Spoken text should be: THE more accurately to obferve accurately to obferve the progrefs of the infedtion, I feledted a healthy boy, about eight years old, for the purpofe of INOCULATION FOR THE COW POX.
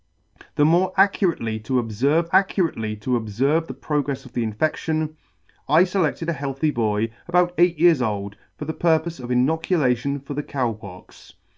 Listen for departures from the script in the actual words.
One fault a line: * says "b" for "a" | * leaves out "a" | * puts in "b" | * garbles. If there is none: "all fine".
all fine